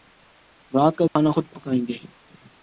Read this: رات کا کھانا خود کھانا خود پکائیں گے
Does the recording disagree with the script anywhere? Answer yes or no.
yes